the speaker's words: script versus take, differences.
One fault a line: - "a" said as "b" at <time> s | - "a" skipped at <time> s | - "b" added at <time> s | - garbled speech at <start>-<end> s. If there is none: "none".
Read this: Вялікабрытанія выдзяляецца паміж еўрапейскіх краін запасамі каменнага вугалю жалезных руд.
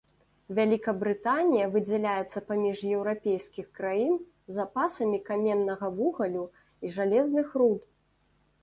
- "і" added at 6.8 s